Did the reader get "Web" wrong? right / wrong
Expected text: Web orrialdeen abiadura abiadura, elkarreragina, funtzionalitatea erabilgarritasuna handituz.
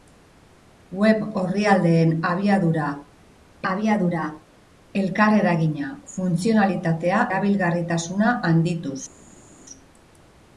right